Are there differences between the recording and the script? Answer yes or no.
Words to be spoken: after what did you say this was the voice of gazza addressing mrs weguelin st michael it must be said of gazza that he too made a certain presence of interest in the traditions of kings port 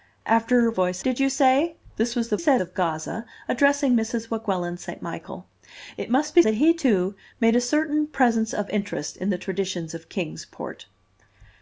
yes